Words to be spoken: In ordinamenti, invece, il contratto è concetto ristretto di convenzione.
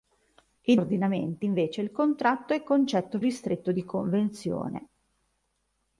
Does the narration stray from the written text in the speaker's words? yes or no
no